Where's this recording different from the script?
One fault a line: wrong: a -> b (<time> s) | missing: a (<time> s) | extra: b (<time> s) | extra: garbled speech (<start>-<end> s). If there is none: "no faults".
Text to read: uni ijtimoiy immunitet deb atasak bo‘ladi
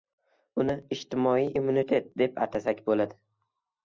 no faults